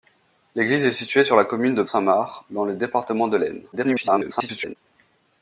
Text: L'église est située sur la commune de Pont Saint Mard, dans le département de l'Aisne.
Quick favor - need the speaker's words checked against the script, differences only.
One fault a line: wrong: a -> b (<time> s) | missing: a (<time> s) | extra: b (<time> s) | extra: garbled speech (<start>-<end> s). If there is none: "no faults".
missing: Pont (1.8 s)
extra: garbled speech (3.7-4.8 s)